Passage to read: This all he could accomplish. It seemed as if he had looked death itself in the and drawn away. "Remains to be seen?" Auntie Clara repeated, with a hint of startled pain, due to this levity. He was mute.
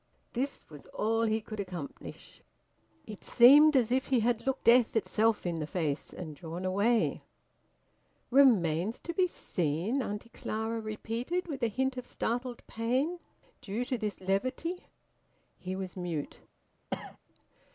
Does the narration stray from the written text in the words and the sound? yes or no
yes